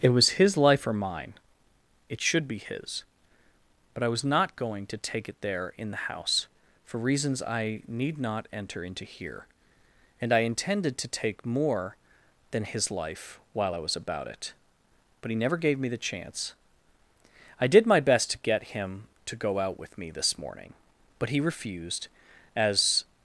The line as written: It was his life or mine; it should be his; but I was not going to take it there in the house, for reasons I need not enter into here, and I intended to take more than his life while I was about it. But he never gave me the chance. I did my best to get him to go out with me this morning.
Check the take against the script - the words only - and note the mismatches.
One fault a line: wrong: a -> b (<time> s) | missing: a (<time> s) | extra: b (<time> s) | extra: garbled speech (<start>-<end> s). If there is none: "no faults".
extra: But he refused as (21.2 s)